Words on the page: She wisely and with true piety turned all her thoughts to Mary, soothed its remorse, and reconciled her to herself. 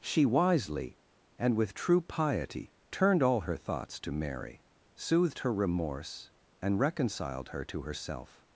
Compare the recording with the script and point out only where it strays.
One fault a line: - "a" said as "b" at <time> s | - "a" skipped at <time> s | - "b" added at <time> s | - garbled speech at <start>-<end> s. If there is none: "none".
- "its" said as "her" at 5.4 s